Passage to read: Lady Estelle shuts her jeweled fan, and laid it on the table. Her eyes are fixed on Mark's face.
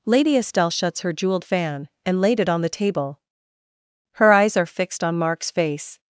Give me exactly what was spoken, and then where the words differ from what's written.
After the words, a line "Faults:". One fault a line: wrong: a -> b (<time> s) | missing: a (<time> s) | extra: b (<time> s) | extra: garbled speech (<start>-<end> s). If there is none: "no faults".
Lady Estelle shuts her jeweled fan, and laid it on the table. Her eyes are fixed on Mark's face.
Faults:
no faults